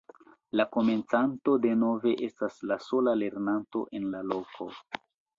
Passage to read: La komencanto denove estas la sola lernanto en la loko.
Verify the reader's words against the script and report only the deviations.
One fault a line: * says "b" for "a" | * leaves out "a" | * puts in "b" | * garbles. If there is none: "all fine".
all fine